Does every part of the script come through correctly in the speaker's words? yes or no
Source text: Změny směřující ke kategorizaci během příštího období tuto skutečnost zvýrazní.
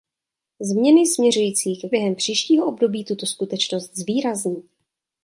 no